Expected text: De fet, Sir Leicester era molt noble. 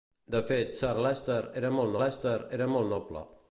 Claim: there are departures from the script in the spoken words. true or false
true